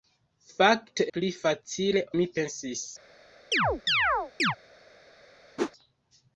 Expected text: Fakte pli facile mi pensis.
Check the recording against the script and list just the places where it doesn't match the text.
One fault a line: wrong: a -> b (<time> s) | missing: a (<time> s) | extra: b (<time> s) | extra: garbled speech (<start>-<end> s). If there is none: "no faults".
no faults